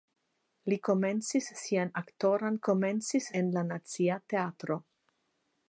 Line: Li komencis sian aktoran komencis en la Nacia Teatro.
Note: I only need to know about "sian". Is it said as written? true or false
true